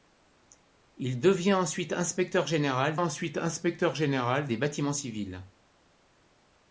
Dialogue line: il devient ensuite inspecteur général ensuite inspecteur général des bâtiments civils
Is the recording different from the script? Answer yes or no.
no